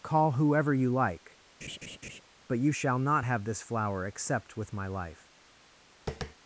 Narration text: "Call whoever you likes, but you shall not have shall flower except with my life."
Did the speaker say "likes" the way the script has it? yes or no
no